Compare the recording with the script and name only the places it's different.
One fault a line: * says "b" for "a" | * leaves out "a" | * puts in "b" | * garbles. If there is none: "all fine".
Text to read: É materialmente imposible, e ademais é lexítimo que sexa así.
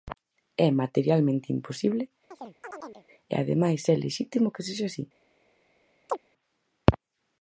all fine